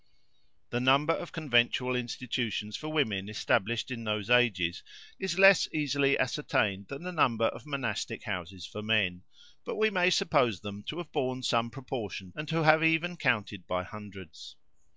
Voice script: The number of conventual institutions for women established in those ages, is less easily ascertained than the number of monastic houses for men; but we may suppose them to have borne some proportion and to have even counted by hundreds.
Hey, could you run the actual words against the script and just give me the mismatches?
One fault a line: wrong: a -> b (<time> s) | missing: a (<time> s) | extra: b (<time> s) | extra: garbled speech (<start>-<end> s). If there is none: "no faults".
no faults